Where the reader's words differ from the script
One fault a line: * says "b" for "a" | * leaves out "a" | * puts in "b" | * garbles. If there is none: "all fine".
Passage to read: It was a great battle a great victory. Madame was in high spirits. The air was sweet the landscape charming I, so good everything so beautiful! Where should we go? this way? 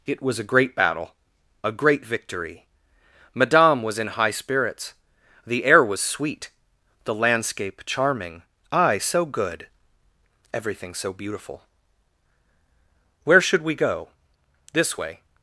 all fine